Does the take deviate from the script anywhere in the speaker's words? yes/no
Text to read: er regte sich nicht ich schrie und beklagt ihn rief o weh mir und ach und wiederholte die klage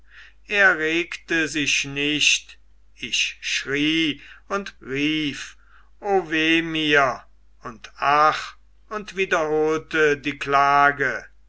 yes